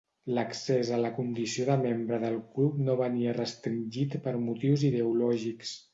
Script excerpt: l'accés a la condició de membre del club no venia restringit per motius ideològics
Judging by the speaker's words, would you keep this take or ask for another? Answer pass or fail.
pass